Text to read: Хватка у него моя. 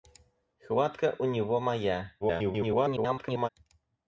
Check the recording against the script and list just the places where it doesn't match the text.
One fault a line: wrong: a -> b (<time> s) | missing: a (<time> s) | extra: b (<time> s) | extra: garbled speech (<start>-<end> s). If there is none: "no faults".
extra: garbled speech (2.2-3.5 s)